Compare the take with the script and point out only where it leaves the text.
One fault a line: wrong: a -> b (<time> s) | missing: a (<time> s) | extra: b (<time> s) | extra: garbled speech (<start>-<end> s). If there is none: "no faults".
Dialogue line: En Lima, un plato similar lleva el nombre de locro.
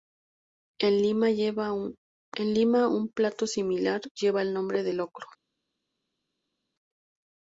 no faults